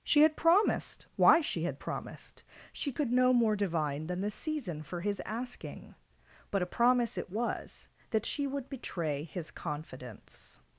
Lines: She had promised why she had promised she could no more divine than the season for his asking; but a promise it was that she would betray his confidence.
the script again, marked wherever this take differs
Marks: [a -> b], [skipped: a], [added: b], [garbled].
She had promised why she had promised she could no more divine than the season for his asking; but a promise it was that she would betray his confidence.